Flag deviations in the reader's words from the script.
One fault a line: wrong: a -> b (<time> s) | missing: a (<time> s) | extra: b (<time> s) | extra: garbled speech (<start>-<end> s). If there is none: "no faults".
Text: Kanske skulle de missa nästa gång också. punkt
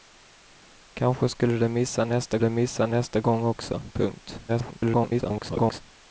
extra: de missa nästa (2.4 s)
extra: garbled speech (4.5-5.8 s)